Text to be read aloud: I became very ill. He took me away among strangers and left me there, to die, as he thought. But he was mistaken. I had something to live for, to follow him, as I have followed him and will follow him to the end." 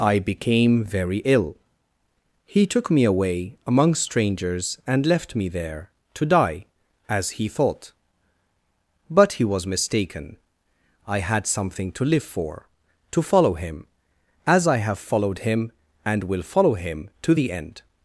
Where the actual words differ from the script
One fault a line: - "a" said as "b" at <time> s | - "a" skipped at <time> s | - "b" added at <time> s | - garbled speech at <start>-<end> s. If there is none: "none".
none